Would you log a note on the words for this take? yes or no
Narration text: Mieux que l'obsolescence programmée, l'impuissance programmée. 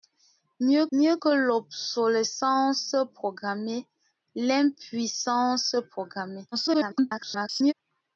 yes